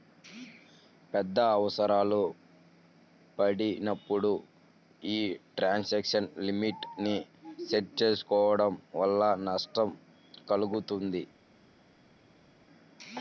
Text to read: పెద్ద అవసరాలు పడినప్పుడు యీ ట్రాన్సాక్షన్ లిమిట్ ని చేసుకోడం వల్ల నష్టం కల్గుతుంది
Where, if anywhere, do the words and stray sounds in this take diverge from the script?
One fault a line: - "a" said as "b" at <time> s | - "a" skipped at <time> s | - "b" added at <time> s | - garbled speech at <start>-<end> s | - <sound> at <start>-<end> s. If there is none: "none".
- "సెట్" added at 7.7 s